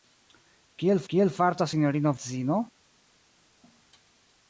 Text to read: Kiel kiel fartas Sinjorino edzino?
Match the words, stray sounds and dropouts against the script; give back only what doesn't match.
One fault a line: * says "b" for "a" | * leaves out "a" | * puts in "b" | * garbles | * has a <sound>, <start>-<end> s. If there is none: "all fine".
all fine